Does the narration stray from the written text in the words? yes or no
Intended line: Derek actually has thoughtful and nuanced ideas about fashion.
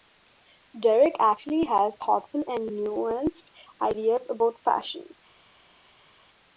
no